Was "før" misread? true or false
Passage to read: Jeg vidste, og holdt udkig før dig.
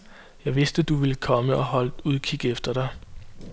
true